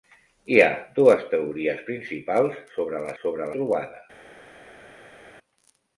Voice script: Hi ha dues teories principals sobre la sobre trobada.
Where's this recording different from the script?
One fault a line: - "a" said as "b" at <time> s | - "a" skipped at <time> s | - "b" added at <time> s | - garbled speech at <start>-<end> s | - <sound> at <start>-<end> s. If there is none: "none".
none